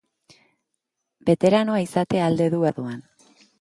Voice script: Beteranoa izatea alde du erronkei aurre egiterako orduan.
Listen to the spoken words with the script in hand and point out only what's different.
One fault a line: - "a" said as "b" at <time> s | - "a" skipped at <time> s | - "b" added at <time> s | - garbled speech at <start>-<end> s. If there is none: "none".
- "erronkei aurre egiterako" skipped at 2.6 s